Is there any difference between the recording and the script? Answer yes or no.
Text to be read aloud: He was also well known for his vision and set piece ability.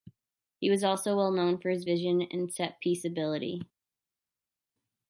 no